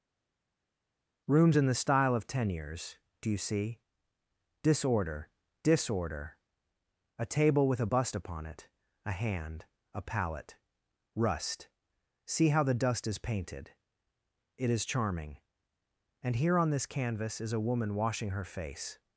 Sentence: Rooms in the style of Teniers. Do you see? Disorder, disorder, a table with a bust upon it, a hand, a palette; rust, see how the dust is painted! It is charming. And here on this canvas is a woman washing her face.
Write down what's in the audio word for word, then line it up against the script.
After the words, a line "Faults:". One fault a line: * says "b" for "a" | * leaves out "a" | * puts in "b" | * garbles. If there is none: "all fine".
Rooms in the style of Teniers. Do you see? Disorder, disorder, a table with a bust upon it, a hand, a palette; rust, see how the dust is painted! It is charming. And here on this canvas is a woman washing her face.
Faults:
all fine